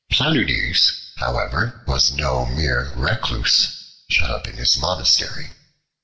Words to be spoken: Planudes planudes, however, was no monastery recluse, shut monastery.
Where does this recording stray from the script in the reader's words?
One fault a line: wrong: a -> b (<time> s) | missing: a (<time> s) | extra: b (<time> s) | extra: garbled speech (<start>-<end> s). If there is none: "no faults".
missing: planudes (0.9 s)
wrong: monastery -> mere (2.5 s)
extra: up in his (4.3 s)